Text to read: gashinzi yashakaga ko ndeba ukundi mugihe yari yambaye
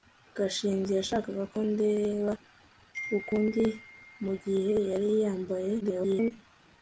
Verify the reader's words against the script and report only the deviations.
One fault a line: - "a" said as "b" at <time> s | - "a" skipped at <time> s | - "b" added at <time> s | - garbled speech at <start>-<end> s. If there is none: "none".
- garbled speech at 5.8-6.3 s